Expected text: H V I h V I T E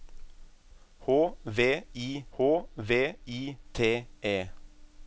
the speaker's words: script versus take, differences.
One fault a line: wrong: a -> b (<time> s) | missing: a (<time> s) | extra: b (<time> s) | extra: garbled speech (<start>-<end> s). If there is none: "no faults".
no faults